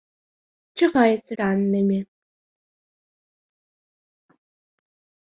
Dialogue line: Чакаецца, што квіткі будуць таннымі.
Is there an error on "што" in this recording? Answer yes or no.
yes